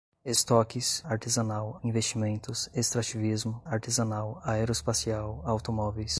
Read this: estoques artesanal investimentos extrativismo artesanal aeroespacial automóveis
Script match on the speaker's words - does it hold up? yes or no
yes